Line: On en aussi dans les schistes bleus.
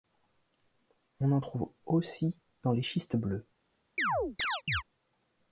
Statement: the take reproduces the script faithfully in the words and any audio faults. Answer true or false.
false